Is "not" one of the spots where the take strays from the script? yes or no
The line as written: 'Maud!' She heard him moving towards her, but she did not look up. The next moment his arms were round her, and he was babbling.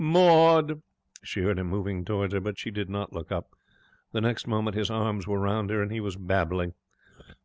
no